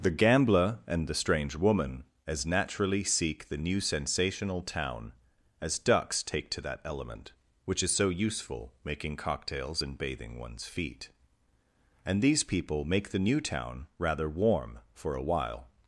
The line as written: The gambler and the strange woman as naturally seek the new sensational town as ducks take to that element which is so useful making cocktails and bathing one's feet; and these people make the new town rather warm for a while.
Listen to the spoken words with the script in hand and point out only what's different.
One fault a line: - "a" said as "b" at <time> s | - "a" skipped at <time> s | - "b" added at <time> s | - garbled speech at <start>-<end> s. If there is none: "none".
none